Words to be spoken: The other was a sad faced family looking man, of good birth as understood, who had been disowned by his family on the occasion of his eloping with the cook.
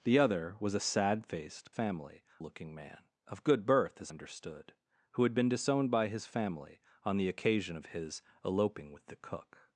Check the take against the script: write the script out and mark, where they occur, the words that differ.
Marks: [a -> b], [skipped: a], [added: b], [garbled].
The other was a sad faced family looking man, of good birth as understood, who had been disowned by his family on the occasion of his eloping with the cook.